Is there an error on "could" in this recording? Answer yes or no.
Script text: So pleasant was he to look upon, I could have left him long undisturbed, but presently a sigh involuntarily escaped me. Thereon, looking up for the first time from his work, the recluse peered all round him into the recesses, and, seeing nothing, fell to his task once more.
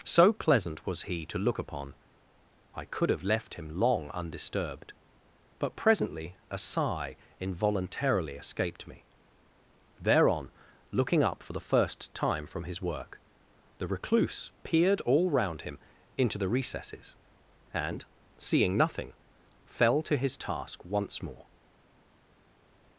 no